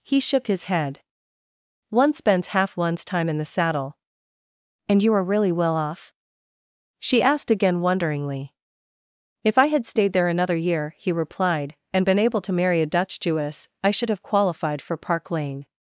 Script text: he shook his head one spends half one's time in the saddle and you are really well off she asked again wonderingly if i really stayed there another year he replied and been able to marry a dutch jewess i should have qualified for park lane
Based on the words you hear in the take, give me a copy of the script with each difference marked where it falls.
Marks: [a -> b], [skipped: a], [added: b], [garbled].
he shook his head one spends half one's time in the saddle and you are really well off she asked again wonderingly if i [really -> had] stayed there another year he replied and been able to marry a dutch jewess i should have qualified for park lane